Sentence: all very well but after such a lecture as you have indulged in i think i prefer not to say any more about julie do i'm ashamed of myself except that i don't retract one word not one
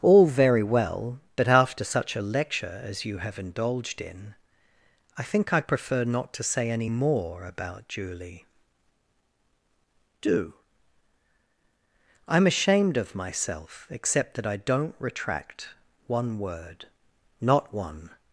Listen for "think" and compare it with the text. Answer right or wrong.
right